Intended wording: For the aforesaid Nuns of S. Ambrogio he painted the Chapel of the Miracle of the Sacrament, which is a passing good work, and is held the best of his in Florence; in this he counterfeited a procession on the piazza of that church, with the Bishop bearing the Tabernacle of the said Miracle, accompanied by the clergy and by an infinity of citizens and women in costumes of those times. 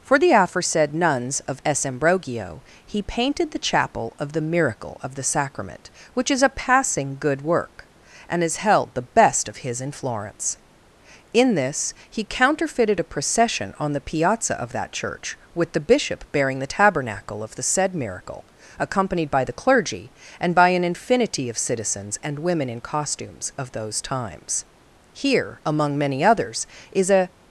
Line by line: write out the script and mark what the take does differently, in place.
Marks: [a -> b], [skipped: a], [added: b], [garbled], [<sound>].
For the aforesaid Nuns of S. Ambrogio he painted the Chapel of the Miracle of the Sacrament, which is a passing good work, and is held the best of his in Florence; in this he counterfeited a procession on the piazza of that church, with the Bishop bearing the Tabernacle of the said Miracle, accompanied by the clergy and by an infinity of citizens and women in costumes of those times. [added: Here among many others is a]